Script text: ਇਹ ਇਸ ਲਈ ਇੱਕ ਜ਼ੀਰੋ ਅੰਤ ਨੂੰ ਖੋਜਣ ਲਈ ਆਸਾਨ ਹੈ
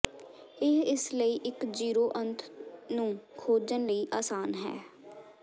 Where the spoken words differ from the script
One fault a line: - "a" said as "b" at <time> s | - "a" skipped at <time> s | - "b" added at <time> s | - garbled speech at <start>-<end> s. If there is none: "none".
none